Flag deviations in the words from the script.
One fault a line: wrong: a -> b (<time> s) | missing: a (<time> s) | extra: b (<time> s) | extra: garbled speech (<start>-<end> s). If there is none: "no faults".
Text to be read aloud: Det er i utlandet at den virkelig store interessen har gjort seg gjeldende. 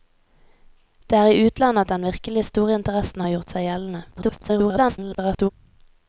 extra: garbled speech (4.1-5.5 s)